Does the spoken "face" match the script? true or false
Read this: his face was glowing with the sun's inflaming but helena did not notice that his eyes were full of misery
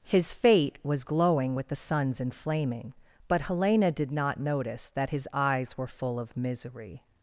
false